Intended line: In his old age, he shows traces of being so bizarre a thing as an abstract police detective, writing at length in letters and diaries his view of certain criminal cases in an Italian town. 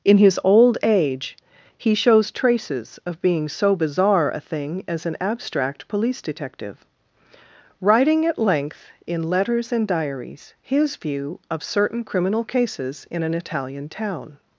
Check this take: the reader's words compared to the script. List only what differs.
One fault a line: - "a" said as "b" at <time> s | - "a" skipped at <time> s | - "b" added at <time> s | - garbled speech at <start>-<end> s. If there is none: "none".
none